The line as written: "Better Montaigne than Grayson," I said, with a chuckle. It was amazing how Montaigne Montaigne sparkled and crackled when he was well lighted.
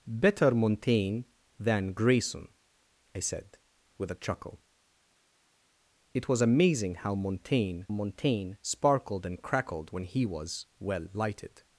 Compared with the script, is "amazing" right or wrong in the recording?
right